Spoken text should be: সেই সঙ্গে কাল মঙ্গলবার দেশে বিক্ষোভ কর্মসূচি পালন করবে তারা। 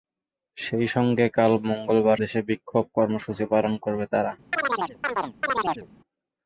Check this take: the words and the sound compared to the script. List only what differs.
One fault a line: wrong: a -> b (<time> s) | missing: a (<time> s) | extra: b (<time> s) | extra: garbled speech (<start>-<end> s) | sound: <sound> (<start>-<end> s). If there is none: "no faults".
sound: chirp (4.5-5.9 s)